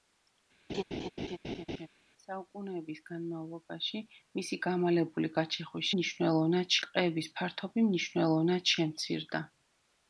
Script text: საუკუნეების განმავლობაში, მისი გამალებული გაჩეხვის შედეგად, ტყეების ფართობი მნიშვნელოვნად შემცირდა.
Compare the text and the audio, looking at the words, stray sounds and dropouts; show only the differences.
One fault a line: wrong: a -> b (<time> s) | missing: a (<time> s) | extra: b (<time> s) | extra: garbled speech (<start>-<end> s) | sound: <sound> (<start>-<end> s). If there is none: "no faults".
sound: laugh (0.7-1.9 s)
wrong: შედეგად -> მნიშვნელოვნად (5.9 s)